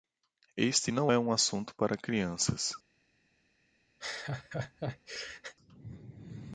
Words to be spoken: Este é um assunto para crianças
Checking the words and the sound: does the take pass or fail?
fail